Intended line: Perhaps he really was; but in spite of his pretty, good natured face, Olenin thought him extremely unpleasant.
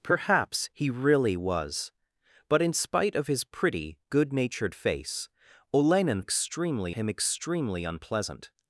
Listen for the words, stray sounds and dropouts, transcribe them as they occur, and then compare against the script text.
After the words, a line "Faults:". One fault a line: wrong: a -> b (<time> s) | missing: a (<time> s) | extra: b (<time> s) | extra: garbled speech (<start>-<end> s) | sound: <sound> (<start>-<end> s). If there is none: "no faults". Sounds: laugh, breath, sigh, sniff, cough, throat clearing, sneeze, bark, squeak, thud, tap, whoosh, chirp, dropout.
Perhaps he really was; but in spite of his pretty, good natured face, Olenin extremely him extremely unpleasant.
Faults:
wrong: thought -> extremely (6.2 s)